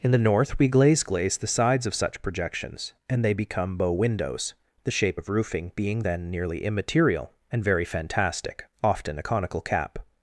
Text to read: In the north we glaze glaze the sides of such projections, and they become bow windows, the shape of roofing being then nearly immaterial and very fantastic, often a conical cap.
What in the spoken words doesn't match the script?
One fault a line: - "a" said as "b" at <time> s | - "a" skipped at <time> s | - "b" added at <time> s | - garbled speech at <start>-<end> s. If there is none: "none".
none